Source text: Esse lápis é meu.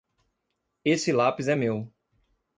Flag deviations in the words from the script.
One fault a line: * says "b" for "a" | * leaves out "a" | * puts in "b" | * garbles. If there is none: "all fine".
all fine